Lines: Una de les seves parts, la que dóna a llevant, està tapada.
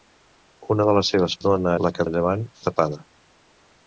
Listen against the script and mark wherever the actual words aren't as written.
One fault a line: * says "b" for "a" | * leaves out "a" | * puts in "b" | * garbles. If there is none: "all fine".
* says "dóna" for "parts"
* leaves out "dóna"
* leaves out "està"